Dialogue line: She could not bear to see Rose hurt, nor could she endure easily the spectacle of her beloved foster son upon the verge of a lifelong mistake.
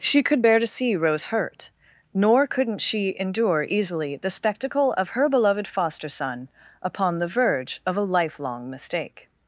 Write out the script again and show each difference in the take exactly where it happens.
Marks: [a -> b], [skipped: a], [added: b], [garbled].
She could [skipped: not] bear to see Rose hurt, nor [could -> couldn't] she endure easily the spectacle of her beloved foster son upon the verge of a lifelong mistake.